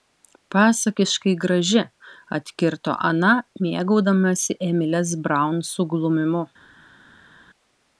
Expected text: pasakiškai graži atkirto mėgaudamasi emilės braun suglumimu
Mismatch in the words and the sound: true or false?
true